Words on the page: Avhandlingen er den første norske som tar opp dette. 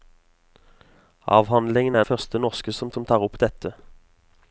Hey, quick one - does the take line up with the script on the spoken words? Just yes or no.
no